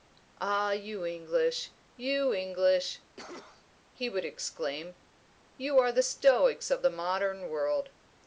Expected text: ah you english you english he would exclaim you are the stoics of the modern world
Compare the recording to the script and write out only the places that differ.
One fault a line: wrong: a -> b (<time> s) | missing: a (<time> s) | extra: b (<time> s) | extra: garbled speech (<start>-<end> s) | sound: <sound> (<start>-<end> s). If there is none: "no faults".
sound: cough (3.2-3.7 s)